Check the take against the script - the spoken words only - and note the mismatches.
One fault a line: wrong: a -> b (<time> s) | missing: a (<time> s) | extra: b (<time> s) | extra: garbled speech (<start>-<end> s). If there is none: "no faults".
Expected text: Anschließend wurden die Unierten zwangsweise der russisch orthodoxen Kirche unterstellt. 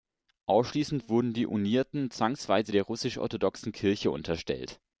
no faults